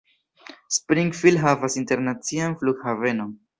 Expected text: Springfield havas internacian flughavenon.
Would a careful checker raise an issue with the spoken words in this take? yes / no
no